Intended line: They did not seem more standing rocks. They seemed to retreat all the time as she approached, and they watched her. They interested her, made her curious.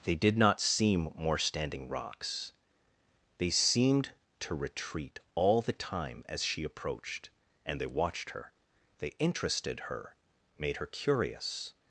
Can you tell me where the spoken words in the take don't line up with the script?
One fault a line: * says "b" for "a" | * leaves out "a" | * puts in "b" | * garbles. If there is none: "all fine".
all fine